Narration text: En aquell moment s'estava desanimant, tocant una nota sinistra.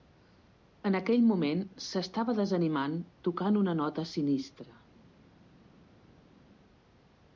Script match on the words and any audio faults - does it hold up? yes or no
yes